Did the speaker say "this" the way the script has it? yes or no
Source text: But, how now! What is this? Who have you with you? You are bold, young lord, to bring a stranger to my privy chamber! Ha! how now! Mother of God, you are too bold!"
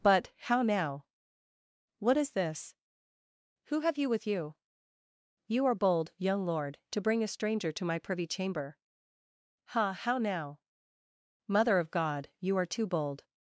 yes